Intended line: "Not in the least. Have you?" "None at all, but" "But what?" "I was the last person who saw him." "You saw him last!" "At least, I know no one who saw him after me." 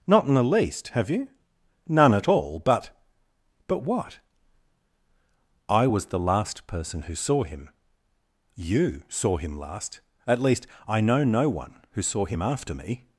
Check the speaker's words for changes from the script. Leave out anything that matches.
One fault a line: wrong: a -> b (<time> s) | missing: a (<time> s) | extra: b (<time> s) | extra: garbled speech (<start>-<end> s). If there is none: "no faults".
no faults